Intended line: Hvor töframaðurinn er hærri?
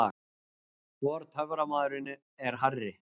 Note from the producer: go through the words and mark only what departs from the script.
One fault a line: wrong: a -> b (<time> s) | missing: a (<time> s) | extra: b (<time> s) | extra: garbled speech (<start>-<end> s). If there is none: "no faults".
no faults